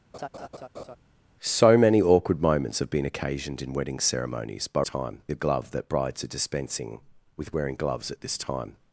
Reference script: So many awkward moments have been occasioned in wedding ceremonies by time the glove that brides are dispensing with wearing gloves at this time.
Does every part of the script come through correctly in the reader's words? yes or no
yes